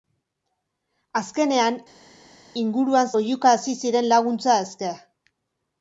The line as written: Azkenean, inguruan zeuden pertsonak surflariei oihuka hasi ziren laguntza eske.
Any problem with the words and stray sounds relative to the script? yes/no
yes